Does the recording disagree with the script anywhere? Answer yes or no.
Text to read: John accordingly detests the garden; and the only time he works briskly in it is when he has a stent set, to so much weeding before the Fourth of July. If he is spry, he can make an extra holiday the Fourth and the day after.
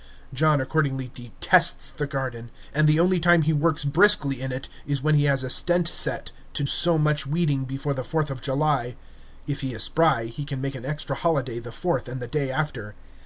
no